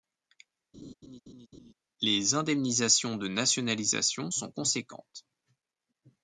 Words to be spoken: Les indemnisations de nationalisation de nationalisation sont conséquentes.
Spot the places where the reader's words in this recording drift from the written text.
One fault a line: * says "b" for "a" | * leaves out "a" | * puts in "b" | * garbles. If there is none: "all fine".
* leaves out "de nationalisation"